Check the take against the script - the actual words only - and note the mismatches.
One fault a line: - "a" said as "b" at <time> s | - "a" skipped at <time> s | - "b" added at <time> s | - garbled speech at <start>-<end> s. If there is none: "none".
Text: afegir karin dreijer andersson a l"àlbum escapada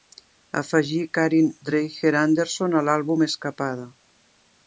none